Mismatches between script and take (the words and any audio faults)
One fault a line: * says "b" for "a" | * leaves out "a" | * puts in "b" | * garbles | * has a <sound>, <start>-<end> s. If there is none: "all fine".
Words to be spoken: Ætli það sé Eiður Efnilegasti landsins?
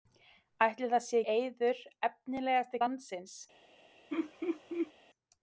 * has a laugh, 4.1-4.9 s